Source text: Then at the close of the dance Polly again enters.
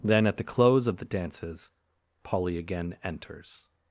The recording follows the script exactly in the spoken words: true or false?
false